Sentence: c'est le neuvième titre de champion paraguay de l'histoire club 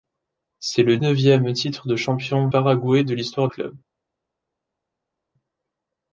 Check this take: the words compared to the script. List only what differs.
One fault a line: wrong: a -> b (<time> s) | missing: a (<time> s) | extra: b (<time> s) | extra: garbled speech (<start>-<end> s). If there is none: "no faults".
no faults